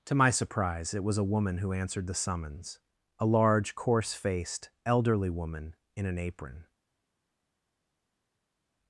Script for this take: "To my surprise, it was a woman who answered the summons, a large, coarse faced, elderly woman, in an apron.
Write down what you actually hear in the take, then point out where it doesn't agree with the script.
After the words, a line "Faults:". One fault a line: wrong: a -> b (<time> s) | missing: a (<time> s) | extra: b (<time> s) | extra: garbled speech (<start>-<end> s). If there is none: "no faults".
"To my surprise, it was a woman who answered the summons, a large, coarse faced, elderly woman, in an apron.
Faults:
no faults